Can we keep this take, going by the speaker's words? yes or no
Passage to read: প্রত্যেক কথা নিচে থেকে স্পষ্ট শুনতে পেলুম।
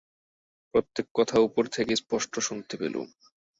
no